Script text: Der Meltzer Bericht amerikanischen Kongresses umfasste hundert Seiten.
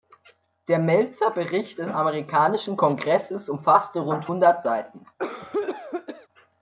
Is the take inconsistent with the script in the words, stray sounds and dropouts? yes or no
yes